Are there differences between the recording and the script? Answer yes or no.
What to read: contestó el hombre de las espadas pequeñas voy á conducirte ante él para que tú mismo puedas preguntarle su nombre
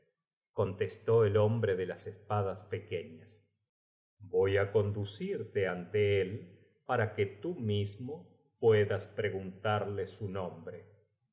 no